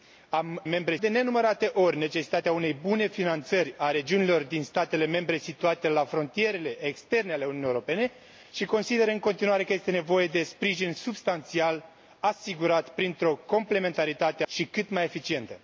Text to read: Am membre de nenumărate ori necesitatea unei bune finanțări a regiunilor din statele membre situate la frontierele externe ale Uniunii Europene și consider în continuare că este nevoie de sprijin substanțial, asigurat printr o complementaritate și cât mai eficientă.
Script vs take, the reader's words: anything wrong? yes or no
no